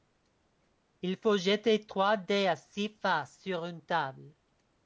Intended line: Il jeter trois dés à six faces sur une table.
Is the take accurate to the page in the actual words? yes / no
no